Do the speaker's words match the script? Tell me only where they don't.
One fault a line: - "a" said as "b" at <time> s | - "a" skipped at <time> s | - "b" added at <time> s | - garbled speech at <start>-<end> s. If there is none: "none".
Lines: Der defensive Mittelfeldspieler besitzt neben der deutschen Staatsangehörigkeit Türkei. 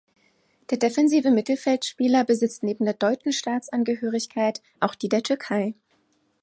- "auch die der" added at 4.8 s